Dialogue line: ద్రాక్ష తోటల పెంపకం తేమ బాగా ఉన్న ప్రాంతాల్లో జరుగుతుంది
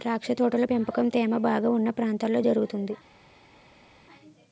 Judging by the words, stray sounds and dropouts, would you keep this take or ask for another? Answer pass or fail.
pass